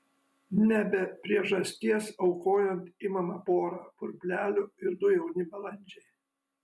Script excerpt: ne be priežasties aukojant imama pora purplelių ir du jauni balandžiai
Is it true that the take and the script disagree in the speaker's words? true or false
false